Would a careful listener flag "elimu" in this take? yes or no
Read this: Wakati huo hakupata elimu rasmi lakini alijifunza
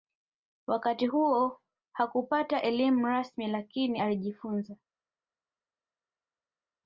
no